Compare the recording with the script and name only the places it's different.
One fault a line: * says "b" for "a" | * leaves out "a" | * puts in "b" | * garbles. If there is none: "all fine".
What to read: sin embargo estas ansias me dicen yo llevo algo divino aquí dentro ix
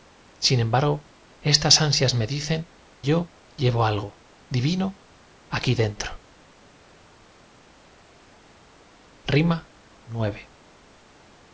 all fine